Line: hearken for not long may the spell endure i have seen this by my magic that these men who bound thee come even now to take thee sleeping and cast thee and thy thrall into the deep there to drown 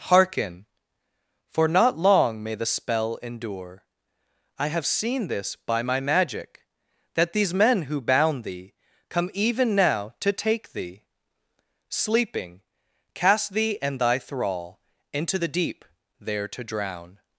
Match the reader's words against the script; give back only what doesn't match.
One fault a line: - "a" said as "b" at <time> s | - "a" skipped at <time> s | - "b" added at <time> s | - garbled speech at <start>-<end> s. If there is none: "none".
- "and" skipped at 12.6 s